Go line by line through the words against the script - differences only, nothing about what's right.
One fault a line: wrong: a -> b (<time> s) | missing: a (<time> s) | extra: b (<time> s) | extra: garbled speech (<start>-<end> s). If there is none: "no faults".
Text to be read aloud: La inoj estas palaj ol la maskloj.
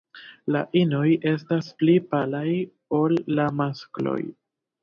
extra: pli (1.8 s)